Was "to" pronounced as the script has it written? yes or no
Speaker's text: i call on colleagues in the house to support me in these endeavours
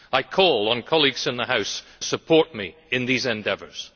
no